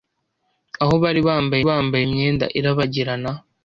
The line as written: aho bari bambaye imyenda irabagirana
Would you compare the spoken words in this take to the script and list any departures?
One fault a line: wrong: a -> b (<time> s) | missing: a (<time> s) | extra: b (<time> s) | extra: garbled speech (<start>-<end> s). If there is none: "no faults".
extra: bambaye (1.7 s)